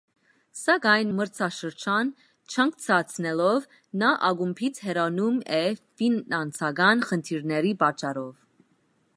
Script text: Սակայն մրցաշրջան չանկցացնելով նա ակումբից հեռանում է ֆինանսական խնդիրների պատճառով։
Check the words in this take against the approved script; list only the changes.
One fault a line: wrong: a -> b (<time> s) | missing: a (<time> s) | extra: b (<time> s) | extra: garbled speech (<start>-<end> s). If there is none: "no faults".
no faults